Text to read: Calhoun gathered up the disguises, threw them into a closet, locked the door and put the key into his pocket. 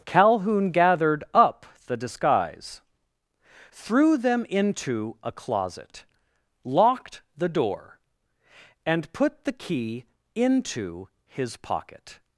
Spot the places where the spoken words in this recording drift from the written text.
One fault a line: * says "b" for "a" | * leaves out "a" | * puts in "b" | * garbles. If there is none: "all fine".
* says "disguise" for "disguises"